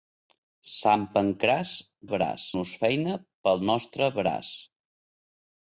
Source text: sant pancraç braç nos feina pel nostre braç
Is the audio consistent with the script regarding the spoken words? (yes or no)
yes